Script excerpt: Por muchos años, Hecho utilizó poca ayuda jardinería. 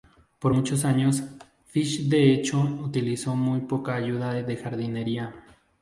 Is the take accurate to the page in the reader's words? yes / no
no